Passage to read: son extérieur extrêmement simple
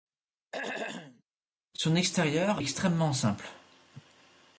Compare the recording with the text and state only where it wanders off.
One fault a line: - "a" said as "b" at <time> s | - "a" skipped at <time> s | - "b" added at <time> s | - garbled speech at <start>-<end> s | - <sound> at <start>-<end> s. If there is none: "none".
- throat clearing at 0.5-1.2 s